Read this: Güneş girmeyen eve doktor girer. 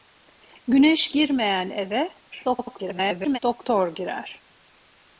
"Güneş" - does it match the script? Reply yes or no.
yes